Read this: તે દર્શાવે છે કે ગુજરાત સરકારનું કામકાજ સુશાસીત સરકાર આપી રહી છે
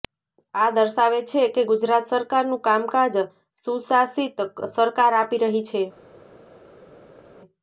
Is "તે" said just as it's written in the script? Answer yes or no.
no